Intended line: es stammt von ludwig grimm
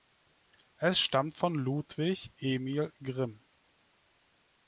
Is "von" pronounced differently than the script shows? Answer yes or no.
no